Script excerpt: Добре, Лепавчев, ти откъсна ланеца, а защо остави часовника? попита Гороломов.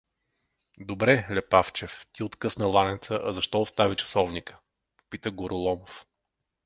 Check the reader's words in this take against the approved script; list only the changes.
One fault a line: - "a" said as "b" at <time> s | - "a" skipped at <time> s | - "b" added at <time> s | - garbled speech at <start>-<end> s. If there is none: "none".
none